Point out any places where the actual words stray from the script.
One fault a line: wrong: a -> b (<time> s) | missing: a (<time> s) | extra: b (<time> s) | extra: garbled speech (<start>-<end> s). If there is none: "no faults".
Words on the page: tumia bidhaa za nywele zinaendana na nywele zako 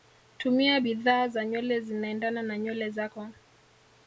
no faults